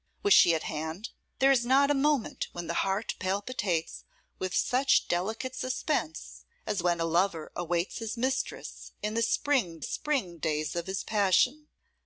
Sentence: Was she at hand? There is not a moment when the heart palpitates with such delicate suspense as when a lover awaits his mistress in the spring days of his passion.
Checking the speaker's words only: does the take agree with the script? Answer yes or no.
no